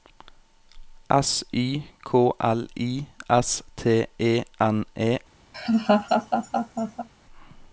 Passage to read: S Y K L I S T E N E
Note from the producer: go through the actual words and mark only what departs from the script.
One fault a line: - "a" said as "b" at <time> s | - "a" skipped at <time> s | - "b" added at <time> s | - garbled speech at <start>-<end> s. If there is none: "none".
none